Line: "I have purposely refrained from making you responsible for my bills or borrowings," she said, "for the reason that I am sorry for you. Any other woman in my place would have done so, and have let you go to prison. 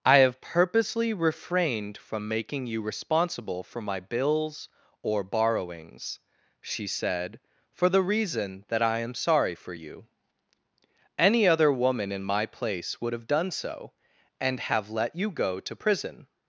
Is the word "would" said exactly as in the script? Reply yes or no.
yes